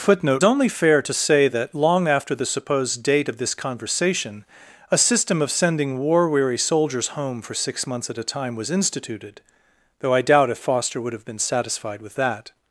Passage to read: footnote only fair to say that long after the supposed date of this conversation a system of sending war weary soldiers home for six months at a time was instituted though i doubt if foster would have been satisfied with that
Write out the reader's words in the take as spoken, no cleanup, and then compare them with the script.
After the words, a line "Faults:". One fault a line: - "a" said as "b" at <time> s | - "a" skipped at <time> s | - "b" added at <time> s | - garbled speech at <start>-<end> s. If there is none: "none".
footnote only fair to say that long after the supposed date of this conversation a system of sending war weary soldiers home for six months at a time was instituted though i doubt if foster would have been satisfied with that
Faults:
none